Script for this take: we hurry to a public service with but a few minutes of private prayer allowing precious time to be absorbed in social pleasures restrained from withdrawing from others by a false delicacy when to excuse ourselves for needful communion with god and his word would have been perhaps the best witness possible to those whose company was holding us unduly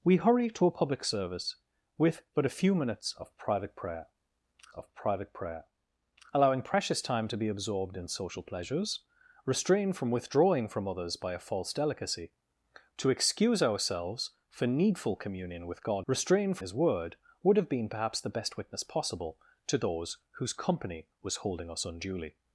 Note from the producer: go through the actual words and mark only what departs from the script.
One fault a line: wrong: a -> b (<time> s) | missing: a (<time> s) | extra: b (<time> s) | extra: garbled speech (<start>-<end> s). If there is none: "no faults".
extra: of private prayer (4.8 s)
missing: when (12.3 s)
wrong: and -> restrained (16.1 s)